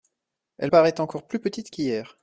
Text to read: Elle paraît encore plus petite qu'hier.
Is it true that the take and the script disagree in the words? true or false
false